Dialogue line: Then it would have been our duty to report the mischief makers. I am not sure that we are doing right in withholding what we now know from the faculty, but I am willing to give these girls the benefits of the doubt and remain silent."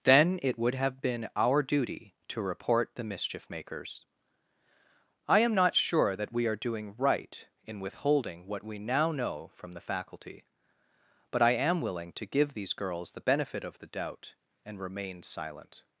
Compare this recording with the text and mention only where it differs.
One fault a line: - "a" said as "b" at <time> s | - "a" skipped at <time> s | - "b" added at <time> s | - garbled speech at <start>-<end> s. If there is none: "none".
- "benefits" said as "benefit" at 13.2 s